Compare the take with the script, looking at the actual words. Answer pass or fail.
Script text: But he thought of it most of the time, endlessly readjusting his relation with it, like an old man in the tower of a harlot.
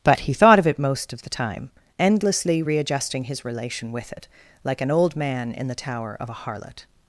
pass